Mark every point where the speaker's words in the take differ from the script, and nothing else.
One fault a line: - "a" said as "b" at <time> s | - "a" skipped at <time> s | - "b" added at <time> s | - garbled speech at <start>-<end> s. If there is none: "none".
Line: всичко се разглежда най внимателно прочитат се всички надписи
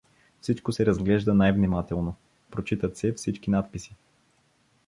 none